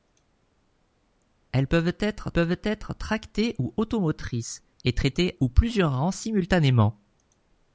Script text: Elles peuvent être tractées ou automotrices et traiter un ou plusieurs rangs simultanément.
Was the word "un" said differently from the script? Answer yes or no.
yes